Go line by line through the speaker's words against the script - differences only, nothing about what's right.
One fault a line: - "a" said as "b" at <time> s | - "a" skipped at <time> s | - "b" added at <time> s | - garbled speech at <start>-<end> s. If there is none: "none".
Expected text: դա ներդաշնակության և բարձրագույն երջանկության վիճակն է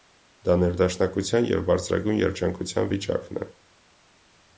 none